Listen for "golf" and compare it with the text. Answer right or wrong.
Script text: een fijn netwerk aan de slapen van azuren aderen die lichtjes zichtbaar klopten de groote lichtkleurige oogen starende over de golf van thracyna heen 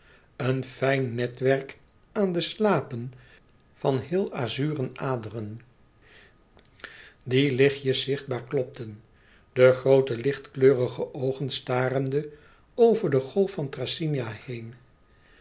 right